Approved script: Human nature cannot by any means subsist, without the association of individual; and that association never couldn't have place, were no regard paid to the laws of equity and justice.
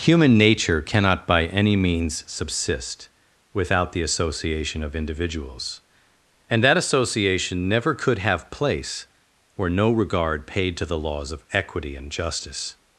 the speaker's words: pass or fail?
fail